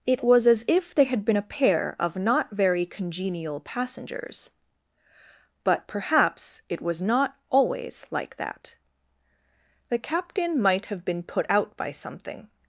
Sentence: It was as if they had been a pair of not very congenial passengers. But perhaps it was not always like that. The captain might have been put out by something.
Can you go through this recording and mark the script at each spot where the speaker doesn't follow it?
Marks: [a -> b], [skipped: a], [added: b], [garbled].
It was as if they had been a pair of not very congenial passengers. But perhaps it was not always like that. The captain might have been put out by something.